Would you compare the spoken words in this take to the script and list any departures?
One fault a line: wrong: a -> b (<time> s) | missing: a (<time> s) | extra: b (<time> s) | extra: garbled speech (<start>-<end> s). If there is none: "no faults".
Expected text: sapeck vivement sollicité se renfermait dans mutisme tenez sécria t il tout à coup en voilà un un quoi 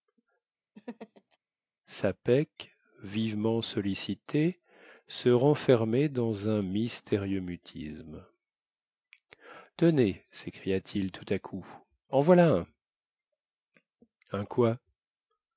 extra: un mystérieux (6.5 s)